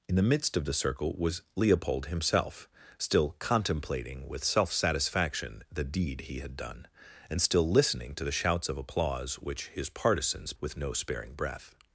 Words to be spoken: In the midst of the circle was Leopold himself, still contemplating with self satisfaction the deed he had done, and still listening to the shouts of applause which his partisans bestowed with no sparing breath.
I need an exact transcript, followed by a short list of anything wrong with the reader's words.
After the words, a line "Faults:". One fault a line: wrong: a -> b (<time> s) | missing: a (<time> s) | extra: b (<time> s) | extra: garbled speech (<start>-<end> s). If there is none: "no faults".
In the midst of the circle was Leopold himself, still contemplating with self satisfaction the deed he had done, and still listening to the shouts of applause which his partisans with no sparing breath.
Faults:
missing: bestowed (10.5 s)